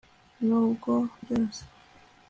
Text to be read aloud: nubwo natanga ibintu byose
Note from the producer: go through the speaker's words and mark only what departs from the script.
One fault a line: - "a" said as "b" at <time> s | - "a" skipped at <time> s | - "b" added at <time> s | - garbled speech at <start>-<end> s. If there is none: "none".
- "natanga ibintu" skipped at 0.9 s